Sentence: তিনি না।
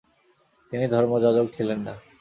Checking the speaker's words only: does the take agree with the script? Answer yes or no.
no